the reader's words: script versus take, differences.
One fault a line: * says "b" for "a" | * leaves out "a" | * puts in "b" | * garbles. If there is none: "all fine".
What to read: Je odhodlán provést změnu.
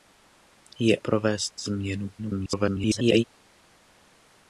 * leaves out "odhodlán"
* garbles